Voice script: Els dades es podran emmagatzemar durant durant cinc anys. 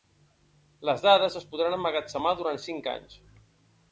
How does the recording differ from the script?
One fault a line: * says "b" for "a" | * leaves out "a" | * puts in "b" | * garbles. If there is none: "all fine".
* says "Les" for "Els"
* leaves out "durant"